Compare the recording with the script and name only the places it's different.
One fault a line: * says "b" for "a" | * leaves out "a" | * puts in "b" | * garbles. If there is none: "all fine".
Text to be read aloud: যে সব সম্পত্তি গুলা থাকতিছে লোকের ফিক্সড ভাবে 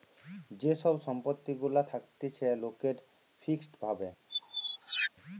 all fine